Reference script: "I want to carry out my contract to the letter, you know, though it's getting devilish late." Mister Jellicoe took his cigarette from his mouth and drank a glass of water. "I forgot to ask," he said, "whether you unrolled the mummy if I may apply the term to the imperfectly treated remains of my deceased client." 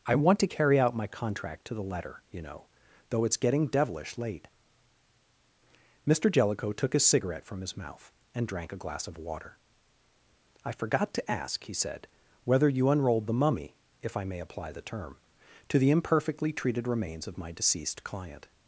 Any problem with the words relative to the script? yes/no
no